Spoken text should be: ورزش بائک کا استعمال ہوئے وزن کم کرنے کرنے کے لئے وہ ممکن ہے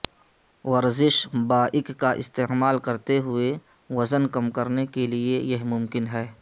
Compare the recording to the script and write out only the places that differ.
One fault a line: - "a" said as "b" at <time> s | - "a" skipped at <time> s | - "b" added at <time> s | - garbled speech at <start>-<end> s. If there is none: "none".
- "کرتے" added at 2.9 s
- "کرنے" skipped at 4.8 s
- "وہ" said as "یہ" at 5.5 s